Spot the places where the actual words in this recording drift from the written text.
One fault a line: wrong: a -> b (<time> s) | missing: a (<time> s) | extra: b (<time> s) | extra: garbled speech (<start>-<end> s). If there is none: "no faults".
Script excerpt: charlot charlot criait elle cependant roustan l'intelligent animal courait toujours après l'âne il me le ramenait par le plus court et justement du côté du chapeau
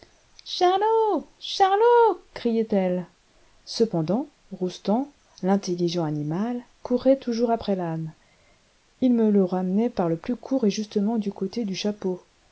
no faults